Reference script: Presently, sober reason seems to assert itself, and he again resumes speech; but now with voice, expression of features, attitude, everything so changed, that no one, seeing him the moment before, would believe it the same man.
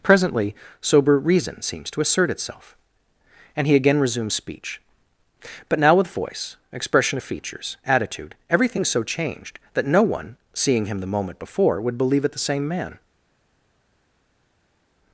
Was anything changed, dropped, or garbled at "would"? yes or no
no